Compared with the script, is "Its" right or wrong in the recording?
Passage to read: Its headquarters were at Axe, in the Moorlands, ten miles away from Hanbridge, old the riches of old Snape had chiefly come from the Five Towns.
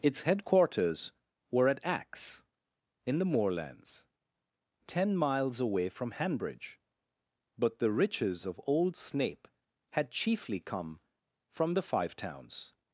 right